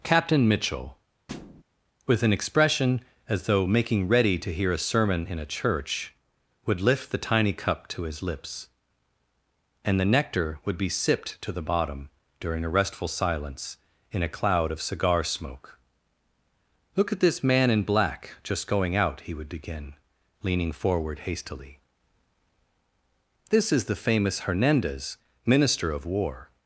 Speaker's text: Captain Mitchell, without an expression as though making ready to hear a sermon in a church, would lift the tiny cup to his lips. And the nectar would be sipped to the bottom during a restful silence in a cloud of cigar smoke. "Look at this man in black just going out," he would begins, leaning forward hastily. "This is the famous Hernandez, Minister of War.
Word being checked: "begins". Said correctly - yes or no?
no